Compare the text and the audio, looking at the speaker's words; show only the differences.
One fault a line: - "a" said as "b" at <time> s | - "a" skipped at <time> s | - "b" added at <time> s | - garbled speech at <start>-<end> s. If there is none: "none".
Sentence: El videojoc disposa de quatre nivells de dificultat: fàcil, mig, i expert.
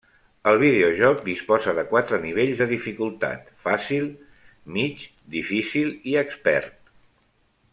- "difícil" added at 5.4 s